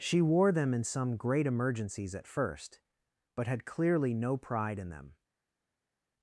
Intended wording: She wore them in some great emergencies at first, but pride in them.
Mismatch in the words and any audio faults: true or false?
true